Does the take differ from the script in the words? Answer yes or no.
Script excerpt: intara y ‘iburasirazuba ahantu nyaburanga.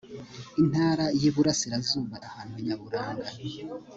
no